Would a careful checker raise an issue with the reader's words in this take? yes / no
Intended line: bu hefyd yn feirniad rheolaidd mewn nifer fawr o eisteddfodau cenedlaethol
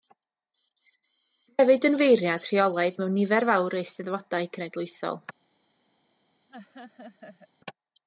no